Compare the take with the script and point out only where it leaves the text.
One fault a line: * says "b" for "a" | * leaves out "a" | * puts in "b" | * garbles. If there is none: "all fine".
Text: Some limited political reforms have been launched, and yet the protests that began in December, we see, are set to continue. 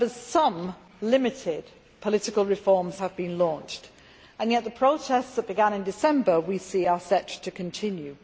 all fine